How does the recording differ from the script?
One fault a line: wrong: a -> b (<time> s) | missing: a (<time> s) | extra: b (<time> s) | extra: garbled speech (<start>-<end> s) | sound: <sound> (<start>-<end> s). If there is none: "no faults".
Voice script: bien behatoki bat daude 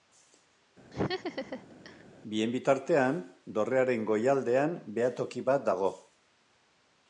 sound: laugh (0.9-2.0 s)
extra: bitartean dorrearen goialdean (2.5 s)
wrong: daude -> dago (5.7 s)